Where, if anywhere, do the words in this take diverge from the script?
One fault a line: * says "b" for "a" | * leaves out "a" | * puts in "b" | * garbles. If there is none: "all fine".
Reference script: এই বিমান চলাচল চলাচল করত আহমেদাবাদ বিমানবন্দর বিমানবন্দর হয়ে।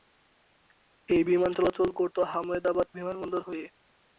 * leaves out "চলাচল"
* leaves out "বিমানবন্দর"